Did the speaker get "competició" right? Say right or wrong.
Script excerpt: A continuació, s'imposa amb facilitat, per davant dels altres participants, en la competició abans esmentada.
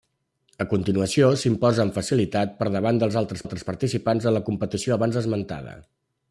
right